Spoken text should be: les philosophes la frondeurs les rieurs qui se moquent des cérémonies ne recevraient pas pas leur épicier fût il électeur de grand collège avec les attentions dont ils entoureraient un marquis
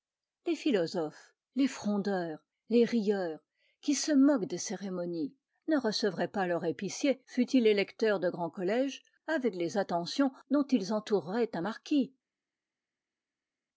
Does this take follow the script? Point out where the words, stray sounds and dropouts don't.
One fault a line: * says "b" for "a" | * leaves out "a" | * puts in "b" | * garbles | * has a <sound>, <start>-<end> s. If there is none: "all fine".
* says "les" for "la"
* leaves out "pas"